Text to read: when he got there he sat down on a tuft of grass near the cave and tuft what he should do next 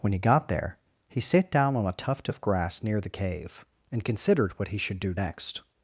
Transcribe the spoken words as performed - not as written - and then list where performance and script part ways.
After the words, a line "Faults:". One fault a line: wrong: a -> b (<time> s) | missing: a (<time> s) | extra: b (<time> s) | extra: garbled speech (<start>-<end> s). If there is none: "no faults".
when he got there he sat down on a tuft of grass near the cave and considered what he should do next
Faults:
wrong: tuft -> considered (4.0 s)